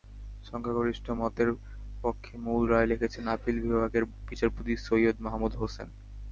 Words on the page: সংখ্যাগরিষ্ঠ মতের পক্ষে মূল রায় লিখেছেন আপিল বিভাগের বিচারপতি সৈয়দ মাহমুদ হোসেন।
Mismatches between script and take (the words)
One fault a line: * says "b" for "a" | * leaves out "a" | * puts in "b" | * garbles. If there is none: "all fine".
all fine